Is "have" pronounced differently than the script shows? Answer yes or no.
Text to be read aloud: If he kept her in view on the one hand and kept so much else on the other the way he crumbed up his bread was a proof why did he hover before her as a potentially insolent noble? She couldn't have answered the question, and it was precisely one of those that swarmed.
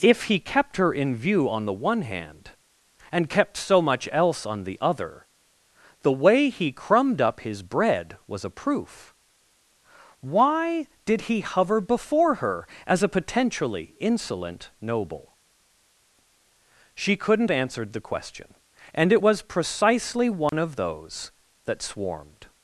yes